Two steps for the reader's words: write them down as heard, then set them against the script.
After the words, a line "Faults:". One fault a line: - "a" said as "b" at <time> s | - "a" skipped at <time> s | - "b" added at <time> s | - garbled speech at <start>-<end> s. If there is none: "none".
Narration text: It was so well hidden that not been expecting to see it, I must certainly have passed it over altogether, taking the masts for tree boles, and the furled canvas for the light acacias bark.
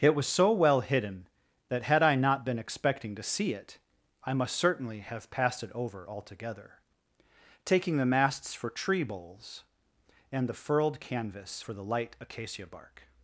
It was so well hidden that had I not been expecting to see it, I must certainly have passed it over altogether, taking the masts for tree boles, and the furled canvas for the light acacia bark.
Faults:
- "had I" added at 1.8 s
- "acacias" said as "acacia" at 12.2 s